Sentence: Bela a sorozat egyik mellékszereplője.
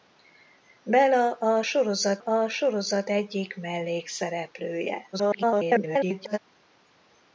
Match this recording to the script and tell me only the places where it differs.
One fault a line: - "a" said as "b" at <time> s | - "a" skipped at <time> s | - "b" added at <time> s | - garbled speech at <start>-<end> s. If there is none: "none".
- "a sorozat" added at 2.2 s
- garbled speech at 5.1-6.4 s